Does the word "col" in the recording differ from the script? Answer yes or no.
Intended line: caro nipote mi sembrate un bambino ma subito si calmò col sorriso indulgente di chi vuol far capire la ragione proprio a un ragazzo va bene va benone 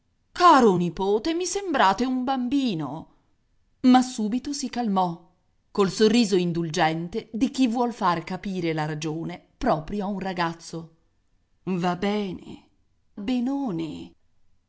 no